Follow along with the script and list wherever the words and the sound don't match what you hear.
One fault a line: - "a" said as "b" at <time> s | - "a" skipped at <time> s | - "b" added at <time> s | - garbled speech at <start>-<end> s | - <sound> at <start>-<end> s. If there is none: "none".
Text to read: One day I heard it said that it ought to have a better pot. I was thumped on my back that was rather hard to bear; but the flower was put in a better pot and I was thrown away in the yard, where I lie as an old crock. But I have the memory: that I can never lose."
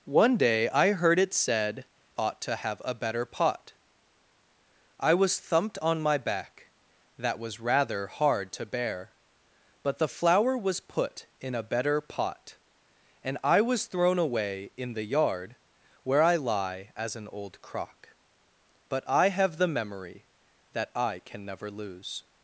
- "that it" skipped at 1.9 s